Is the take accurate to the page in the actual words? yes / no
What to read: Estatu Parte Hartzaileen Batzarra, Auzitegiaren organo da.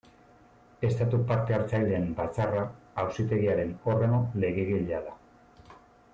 no